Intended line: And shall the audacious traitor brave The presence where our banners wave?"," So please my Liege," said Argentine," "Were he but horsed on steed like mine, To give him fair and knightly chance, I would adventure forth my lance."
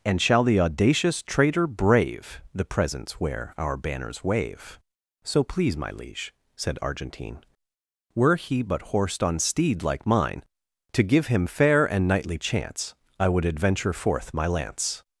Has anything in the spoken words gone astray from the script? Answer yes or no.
no